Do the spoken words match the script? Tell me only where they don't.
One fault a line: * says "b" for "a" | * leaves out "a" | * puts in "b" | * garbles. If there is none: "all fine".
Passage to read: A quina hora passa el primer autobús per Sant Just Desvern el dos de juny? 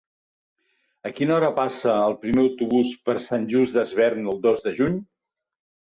all fine